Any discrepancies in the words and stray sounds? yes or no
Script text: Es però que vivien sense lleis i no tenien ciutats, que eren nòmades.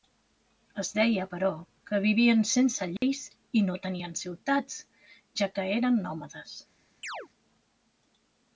yes